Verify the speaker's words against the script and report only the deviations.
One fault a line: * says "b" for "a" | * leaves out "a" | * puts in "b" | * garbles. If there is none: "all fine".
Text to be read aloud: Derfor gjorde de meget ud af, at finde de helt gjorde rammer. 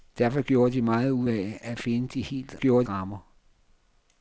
all fine